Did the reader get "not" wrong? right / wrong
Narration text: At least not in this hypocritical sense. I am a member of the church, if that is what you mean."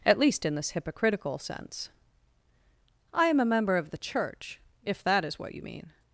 wrong